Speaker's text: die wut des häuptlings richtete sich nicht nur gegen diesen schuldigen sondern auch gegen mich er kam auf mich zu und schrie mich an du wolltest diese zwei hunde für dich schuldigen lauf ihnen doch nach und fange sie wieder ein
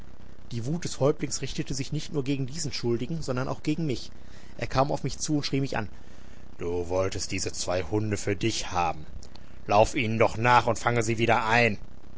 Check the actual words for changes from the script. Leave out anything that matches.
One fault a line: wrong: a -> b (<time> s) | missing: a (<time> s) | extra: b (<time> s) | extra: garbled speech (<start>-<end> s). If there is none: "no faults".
wrong: schuldigen -> haben (8.7 s)